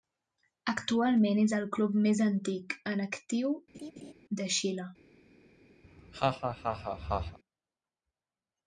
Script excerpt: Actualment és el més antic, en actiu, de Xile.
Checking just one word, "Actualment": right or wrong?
right